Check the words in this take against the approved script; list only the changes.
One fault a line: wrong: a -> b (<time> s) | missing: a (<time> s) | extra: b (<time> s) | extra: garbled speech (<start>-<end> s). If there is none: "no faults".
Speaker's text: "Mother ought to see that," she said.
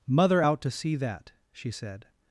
wrong: ought -> out (0.4 s)